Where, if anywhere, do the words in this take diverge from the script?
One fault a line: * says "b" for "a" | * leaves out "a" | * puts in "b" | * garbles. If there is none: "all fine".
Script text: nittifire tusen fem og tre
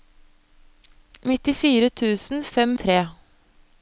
all fine